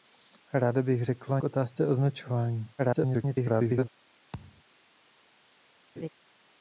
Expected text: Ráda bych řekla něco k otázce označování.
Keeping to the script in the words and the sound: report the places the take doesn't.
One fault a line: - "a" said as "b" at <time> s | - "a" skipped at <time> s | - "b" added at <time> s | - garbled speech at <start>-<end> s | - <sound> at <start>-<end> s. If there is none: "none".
- "něco" skipped at 1.4 s
- garbled speech at 2.8-3.9 s
- thud at 4.3-4.6 s
- laugh at 6.0-6.1 s